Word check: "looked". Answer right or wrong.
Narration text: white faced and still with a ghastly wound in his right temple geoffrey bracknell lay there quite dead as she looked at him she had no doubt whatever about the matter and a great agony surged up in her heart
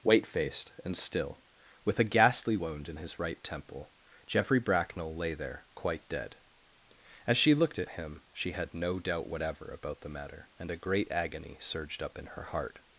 right